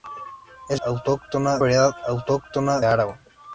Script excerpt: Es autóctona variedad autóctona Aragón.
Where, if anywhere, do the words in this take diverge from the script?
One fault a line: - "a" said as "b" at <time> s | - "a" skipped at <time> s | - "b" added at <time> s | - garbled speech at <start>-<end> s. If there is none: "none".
none